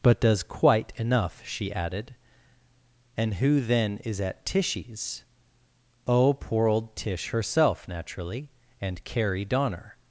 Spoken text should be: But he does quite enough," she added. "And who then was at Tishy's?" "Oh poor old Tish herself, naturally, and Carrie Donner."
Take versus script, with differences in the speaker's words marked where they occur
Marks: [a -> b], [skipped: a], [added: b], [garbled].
But [skipped: he] does quite enough," she added. "And who then [was -> is] at Tishy's?" "Oh poor old Tish herself, naturally, and Carrie Donner."